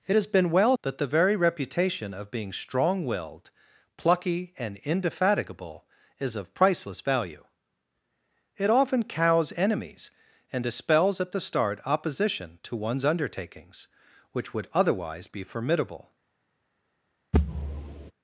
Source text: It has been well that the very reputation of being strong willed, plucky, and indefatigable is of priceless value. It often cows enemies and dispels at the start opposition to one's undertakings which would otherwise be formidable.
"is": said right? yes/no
yes